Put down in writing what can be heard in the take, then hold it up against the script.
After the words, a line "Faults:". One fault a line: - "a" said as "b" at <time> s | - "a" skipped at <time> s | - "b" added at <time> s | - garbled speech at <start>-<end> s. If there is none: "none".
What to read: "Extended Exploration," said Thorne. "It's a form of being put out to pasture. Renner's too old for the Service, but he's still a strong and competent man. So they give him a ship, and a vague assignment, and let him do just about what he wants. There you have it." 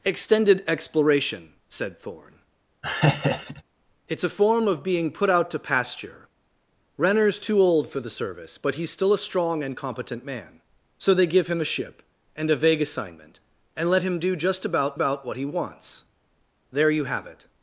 "Extended Exploration," said Thorne. "It's a form of being put out to pasture. Renner's too old for the Service, but he's still a strong and competent man. So they give him a ship, and a vague assignment, and let him do just about about what he wants. There you have it."
Faults:
- "about" added at 14.9 s